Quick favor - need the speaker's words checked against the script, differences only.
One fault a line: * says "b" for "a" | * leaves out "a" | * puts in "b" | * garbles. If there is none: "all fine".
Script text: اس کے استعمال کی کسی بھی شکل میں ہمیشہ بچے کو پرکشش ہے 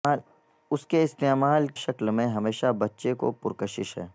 * leaves out "کی کسی بھی"